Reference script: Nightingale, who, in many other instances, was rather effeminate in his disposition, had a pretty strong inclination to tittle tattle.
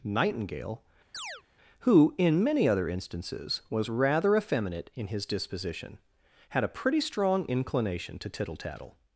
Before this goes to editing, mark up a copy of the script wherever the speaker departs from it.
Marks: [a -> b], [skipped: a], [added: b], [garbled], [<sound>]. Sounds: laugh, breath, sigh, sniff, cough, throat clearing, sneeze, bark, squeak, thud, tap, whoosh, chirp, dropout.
Nightingale, [chirp] who, in many other instances, was rather effeminate in his disposition, had a pretty strong inclination to tittle tattle.